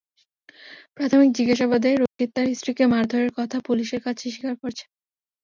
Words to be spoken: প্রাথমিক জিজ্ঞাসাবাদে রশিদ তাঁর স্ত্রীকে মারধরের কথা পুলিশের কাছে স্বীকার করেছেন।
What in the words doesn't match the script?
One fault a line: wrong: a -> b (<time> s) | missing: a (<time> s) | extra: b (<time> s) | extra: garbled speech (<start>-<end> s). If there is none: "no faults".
no faults